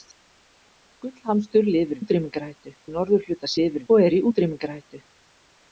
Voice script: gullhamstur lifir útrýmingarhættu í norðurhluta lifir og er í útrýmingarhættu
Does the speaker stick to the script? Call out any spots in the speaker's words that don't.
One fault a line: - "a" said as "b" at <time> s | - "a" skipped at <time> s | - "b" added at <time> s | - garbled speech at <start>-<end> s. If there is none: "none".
none